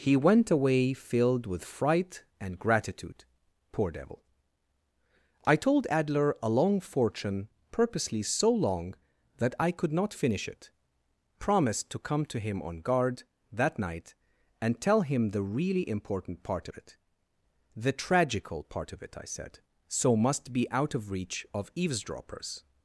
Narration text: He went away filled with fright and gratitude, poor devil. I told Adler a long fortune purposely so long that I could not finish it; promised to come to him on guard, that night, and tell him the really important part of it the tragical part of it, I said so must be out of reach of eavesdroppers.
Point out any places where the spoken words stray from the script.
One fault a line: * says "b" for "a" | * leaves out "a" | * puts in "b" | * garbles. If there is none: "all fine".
all fine